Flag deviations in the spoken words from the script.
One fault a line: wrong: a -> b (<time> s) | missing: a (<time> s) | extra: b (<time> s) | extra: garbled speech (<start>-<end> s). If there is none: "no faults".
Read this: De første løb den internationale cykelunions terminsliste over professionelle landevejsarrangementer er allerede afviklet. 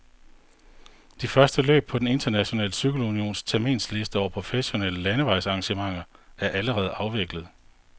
extra: på (1.9 s)